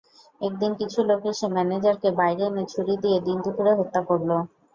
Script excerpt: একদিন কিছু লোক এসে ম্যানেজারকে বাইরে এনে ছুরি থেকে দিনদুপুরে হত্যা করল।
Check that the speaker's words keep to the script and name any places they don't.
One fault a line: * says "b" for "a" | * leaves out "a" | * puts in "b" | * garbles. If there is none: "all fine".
* says "দিয়ে" for "থেকে"